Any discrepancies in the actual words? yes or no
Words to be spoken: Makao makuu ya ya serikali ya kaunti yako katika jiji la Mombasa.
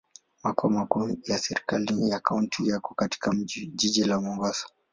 yes